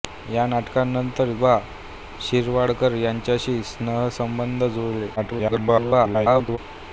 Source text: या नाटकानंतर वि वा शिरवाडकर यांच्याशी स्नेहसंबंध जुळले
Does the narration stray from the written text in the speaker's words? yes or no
yes